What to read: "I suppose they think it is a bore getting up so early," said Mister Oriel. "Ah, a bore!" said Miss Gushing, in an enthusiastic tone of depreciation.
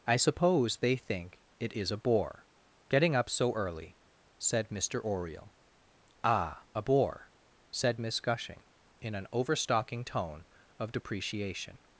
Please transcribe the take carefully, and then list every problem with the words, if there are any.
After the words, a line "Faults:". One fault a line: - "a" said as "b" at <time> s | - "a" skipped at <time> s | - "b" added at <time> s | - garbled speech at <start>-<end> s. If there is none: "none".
"I suppose they think it is a bore getting up so early," said Mister Oriel. "Ah, a bore!" said Miss Gushing, in an overstocking tone of depreciation.
Faults:
- "enthusiastic" said as "overstocking" at 9.3 s